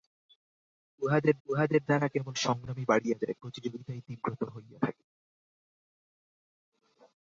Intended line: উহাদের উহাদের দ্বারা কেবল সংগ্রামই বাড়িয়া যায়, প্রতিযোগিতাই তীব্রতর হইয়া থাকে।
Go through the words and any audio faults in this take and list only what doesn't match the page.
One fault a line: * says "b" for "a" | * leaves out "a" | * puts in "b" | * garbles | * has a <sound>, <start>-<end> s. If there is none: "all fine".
all fine